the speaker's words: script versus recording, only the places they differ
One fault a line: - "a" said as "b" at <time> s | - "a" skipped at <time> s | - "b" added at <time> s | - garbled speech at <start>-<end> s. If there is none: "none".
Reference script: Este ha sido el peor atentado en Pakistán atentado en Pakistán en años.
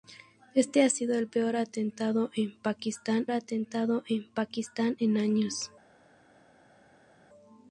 none